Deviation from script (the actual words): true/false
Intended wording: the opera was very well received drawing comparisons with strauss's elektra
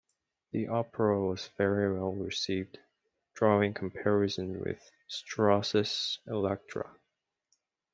false